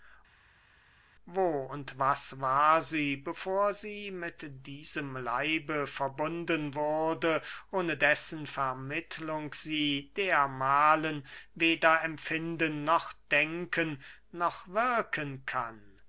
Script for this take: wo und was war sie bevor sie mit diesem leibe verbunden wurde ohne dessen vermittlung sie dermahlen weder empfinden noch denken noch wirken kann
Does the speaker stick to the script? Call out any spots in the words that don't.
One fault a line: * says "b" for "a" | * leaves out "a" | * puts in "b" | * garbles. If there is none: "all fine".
all fine